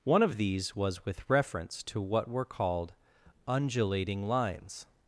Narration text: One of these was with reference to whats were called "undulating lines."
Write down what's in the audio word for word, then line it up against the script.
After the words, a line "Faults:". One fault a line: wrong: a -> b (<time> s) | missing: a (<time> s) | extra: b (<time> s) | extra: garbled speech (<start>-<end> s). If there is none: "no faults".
One of these was with reference to what were called "undulating lines."
Faults:
wrong: whats -> what (2.0 s)